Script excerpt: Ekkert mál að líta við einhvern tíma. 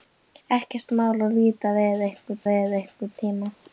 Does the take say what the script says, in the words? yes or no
no